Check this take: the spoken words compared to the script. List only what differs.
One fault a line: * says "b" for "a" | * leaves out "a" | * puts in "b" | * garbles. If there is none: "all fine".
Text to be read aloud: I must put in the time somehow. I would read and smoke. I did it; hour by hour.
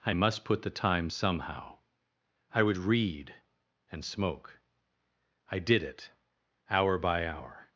* leaves out "in"